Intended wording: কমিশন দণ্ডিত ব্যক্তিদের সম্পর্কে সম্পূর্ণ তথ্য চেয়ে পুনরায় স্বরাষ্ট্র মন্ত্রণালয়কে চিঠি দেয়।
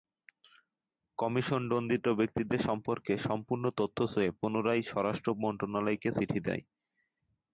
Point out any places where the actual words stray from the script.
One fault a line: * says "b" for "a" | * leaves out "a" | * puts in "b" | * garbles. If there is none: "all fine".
all fine